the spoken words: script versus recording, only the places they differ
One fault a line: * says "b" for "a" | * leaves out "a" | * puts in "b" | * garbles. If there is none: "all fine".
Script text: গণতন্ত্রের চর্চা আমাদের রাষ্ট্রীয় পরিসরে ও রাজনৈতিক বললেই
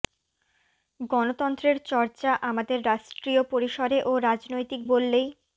all fine